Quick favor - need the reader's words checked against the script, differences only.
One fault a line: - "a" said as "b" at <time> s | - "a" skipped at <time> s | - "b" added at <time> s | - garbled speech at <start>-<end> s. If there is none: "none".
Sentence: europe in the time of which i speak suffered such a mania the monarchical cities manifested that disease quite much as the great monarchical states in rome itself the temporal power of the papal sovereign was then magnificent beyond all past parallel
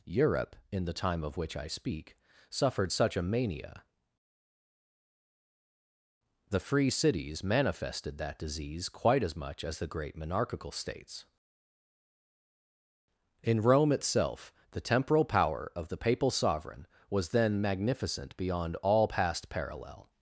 - "monarchical" said as "free" at 6.6 s
- "as" added at 9.2 s